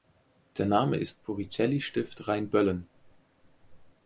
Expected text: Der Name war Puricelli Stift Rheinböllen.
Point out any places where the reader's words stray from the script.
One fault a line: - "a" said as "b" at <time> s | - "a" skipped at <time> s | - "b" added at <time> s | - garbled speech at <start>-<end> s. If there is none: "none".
- "war" said as "ist" at 1.0 s